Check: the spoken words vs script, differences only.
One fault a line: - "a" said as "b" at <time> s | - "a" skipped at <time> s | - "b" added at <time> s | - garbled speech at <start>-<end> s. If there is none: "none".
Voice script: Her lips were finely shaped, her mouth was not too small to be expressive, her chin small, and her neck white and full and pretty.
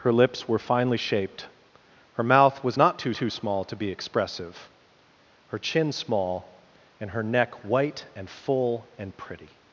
- "too" added at 3.1 s